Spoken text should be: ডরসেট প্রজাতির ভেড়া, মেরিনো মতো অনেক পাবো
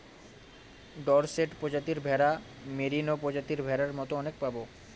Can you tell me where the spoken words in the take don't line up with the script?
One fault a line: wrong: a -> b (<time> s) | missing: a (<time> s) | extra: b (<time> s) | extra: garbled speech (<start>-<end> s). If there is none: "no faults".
extra: প্রজাতির ভেড়ার (3.2 s)